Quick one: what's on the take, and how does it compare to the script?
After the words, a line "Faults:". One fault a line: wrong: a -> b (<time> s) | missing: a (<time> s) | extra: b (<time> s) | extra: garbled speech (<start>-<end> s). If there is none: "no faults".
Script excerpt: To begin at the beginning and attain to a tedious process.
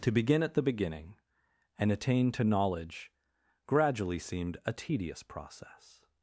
To begin at the beginning and attain to knowledge gradually seemed a tedious process.
Faults:
extra: knowledge gradually seemed (2.4 s)